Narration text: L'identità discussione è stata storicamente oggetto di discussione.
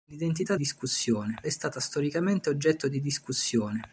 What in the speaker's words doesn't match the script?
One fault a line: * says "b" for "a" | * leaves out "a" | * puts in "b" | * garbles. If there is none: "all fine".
all fine